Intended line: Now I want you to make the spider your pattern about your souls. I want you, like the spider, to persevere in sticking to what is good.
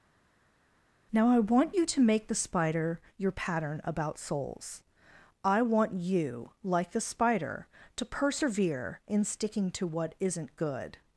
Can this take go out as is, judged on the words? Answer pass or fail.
fail